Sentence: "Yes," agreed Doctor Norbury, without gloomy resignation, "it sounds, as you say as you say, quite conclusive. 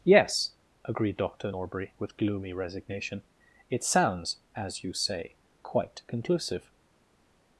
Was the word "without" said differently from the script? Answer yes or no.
yes